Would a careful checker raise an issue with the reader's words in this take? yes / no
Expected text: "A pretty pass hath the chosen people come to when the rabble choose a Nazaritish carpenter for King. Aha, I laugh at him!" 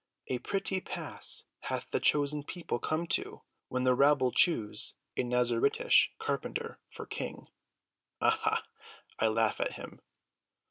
no